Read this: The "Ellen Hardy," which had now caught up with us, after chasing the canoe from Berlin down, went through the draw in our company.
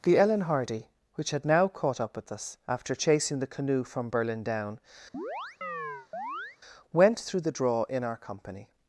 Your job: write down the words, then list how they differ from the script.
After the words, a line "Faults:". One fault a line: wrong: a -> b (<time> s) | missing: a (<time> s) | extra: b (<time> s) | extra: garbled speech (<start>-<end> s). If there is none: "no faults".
The "Ellen Hardy," which had now caught up with us, after chasing the canoe from Berlin down, went through the draw in our company.
Faults:
no faults